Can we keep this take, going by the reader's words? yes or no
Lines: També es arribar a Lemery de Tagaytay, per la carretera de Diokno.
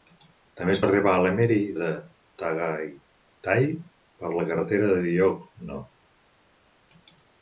yes